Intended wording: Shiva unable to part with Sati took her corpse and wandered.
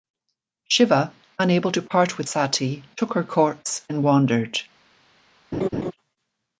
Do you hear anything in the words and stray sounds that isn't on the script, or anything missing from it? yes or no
yes